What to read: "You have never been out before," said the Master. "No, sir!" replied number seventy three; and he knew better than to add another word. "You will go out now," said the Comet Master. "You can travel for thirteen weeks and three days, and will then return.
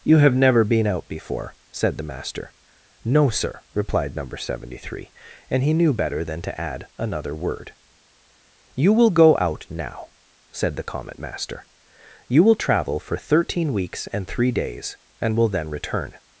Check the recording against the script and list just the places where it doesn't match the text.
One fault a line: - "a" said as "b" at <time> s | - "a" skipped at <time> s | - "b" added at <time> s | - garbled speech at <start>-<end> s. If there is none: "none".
- "can" said as "will" at 12.4 s